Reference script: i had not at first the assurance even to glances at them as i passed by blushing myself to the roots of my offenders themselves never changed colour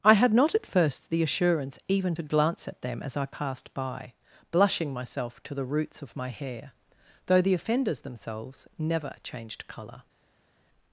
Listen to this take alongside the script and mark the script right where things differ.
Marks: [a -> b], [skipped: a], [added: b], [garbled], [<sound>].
i had not at first the assurance even to [glances -> glance] at them as i passed by blushing myself to the roots of my [added: hair though the] offenders themselves never changed colour